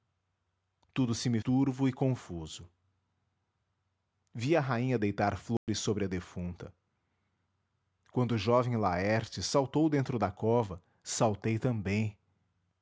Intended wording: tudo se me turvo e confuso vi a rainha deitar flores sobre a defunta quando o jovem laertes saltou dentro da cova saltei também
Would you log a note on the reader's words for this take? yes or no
no